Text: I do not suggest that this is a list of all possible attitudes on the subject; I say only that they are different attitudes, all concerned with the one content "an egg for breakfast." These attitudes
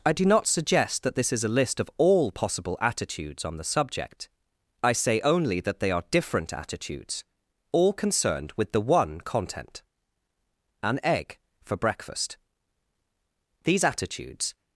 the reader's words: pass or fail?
pass